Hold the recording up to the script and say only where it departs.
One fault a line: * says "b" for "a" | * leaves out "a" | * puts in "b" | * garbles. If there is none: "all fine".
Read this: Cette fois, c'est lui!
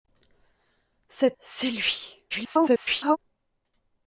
* leaves out "fois"
* garbles